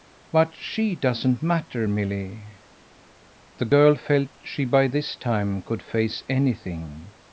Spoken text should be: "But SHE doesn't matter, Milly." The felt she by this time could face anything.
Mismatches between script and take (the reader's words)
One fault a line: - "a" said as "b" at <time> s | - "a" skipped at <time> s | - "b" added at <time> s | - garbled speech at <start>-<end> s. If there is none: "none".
- "girl" added at 3.7 s